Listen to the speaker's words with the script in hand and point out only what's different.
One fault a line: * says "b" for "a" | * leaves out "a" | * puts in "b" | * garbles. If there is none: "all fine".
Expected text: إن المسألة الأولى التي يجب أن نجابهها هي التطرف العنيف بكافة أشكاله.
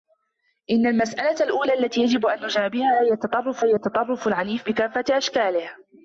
* puts in "هي التطرف"